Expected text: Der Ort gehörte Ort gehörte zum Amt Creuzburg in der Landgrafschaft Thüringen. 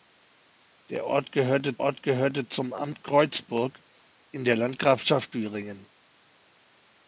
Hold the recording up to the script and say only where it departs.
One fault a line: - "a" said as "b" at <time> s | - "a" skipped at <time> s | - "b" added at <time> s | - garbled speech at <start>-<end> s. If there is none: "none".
none